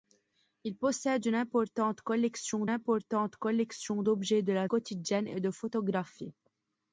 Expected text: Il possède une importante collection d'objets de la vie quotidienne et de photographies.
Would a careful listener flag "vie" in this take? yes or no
yes